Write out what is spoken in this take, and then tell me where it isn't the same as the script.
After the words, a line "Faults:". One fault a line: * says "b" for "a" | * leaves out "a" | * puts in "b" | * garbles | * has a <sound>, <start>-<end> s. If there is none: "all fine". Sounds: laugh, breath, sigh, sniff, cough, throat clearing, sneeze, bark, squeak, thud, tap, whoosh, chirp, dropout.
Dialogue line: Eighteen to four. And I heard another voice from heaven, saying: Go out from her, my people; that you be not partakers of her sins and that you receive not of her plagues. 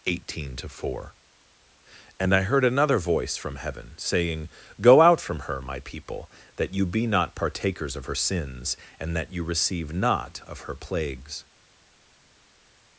Eighteen to four. And I heard another voice from heaven, saying: Go out from her, my people; that you be not partakers of her sins and that you receive not of her plagues.
Faults:
all fine